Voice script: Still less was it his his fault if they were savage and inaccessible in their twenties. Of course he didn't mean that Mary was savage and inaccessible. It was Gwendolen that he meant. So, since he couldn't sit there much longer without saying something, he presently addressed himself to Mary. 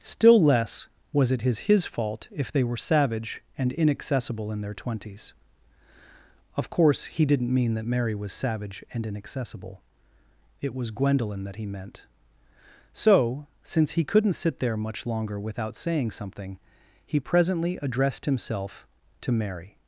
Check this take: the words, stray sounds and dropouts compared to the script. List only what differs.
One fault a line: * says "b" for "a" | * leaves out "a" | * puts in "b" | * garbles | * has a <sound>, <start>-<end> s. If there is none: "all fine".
all fine